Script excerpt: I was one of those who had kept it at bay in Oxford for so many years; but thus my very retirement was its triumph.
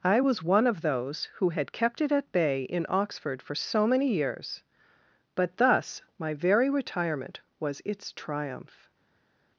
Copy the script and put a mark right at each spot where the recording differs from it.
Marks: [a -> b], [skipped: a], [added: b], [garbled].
I was one of those who had kept it at bay in Oxford for so many years; but thus my very retirement was its triumph.